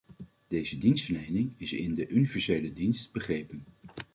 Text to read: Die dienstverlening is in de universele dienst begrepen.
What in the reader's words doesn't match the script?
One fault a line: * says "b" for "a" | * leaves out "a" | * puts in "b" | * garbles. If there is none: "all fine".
* says "Deze" for "Die"